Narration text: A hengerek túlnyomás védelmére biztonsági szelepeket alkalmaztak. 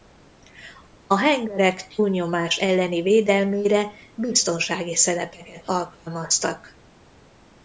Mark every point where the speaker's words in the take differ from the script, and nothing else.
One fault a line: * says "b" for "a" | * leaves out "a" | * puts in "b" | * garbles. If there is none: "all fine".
* puts in "elleni"